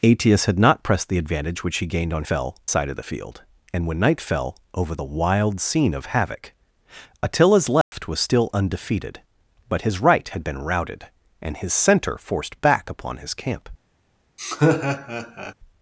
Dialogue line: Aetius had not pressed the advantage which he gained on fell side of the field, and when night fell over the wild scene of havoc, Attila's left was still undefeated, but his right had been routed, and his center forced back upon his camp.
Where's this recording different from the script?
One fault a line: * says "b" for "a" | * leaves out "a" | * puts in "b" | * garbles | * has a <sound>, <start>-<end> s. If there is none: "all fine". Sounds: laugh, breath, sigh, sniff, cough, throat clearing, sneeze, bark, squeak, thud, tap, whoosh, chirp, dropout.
* has a dropout, 7.8-7.9 s
* has a laugh, 14.4-15.5 s